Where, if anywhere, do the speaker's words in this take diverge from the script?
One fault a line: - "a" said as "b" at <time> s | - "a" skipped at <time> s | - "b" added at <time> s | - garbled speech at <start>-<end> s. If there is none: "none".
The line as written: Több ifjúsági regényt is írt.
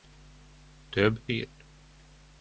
- "ifjúsági regényt is" skipped at 1.2 s